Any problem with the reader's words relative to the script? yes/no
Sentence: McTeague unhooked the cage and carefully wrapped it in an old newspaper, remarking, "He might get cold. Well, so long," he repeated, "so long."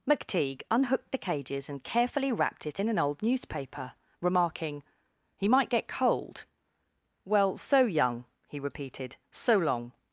yes